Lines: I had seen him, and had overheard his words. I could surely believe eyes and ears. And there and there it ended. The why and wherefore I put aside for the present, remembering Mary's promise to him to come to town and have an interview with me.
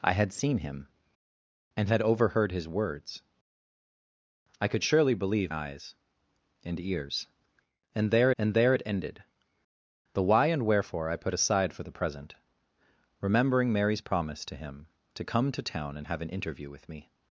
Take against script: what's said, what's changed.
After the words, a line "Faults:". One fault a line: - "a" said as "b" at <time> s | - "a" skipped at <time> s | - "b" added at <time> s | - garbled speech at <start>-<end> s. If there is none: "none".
I had seen him, and had overheard his words. I could surely believe eyes and ears. And there and there it ended. The why and wherefore I put aside for the present, remembering Mary's promise to him to come to town and have an interview with me.
Faults:
none